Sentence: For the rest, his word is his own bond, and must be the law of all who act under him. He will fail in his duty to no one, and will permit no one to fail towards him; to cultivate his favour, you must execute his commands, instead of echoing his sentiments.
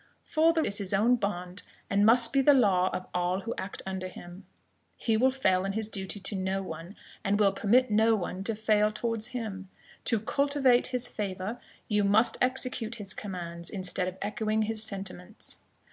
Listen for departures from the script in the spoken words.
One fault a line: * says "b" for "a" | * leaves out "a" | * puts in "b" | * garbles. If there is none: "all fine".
* leaves out "rest his word"